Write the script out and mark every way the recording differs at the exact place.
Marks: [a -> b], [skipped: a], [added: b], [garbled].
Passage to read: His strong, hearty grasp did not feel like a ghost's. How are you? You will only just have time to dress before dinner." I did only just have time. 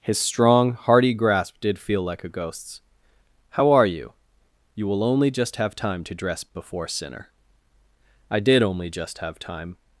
His strong, hearty grasp did [skipped: not] feel like a ghost's. How are you? You will only just have time to dress before [dinner." -> sinner] I did only just have time.